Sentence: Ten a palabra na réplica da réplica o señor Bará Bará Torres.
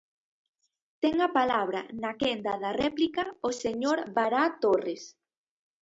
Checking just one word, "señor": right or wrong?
right